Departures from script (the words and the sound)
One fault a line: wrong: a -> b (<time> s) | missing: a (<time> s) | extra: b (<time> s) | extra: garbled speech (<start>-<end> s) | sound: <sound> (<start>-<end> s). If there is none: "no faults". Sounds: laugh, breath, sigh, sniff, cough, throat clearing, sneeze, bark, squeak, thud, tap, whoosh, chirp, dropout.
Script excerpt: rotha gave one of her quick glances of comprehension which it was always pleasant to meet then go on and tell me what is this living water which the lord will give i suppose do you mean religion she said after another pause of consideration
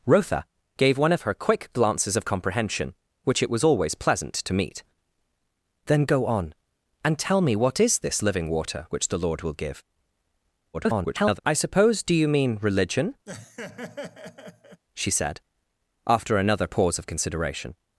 extra: garbled speech (10.7-11.4 s)
sound: laugh (13.3-14.8 s)